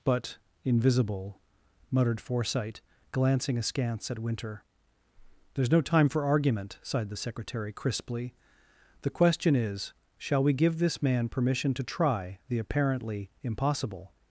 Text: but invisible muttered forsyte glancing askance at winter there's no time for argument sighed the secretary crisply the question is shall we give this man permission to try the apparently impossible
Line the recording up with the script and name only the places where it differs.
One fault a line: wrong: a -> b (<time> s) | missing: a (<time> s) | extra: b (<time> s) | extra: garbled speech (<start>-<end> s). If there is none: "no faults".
no faults